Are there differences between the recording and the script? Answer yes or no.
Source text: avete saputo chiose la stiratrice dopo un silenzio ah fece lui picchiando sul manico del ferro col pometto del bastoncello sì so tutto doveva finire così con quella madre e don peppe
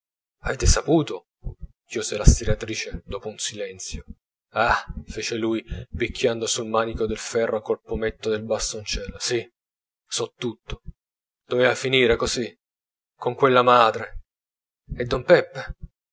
no